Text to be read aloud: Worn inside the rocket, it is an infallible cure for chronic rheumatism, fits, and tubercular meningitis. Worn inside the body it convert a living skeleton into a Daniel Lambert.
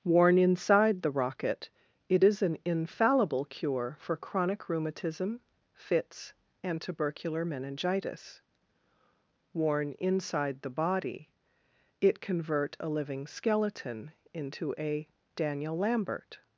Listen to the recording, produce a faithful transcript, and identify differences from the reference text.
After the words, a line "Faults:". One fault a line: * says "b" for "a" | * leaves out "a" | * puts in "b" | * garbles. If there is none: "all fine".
Worn inside the rocket, it is an infallible cure for chronic rheumatism, fits, and tubercular meningitis. Worn inside the body it convert a living skeleton into a Daniel Lambert.
Faults:
all fine